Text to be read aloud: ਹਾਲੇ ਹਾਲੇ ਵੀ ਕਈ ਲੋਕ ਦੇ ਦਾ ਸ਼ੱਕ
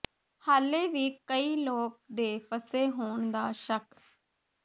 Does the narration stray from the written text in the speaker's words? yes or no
yes